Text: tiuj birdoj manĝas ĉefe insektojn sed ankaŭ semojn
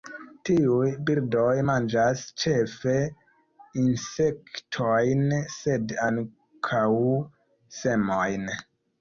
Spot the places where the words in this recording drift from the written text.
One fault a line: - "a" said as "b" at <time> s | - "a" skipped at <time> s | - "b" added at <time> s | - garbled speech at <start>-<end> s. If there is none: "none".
none